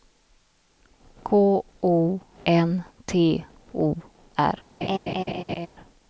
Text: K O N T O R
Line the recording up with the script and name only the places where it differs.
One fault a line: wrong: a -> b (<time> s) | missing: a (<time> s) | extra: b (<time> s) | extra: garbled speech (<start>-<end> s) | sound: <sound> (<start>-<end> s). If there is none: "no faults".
sound: laugh (4.8-5.7 s)